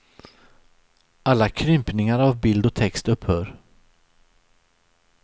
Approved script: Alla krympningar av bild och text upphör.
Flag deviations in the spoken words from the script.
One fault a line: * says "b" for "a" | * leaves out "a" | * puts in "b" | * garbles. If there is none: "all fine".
all fine